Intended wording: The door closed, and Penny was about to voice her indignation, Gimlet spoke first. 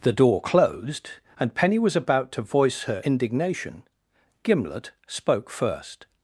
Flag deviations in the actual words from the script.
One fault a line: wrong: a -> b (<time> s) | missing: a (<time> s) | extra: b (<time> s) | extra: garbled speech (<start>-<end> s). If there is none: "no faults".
no faults